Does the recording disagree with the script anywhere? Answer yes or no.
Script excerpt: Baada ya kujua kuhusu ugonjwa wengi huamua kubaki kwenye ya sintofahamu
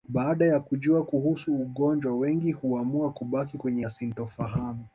no